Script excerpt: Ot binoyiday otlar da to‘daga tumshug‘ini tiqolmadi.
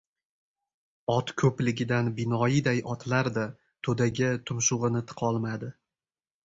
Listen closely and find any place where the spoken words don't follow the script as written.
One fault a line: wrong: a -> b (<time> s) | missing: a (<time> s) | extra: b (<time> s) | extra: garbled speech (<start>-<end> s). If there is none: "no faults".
extra: ko‘pligidan (1.4 s)